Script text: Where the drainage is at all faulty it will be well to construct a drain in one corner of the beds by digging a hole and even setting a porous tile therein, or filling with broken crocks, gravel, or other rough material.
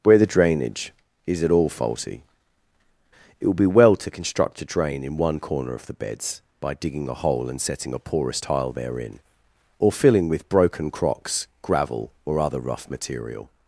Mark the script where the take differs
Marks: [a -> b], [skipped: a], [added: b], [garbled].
Where the drainage is at all faulty it will be well to construct a drain in one corner of the beds by digging a hole and [skipped: even] setting a porous tile therein, or filling with broken crocks, gravel, or other rough material.